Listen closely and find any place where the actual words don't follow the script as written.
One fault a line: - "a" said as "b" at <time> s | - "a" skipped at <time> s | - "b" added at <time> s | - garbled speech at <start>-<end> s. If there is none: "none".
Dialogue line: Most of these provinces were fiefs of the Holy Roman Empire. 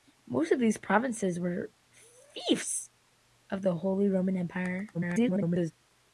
- garbled speech at 4.9-5.7 s